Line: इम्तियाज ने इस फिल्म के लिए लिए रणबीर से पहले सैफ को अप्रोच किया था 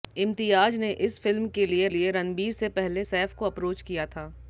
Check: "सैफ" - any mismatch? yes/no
no